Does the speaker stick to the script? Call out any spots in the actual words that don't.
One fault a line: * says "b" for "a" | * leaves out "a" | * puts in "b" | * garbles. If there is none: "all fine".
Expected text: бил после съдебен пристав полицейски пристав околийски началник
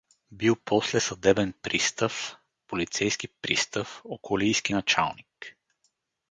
all fine